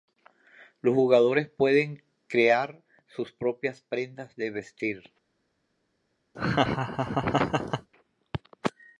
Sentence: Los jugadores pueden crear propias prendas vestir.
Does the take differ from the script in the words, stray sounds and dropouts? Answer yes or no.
yes